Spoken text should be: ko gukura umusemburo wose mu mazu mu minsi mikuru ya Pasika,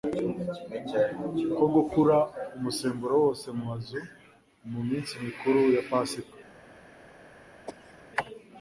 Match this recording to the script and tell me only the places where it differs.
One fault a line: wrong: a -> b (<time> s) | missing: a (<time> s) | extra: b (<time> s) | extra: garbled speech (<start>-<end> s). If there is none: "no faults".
no faults